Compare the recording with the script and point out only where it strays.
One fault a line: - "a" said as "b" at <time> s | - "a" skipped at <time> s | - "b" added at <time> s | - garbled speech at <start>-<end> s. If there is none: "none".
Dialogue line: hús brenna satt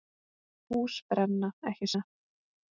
- "ekki" added at 1.7 s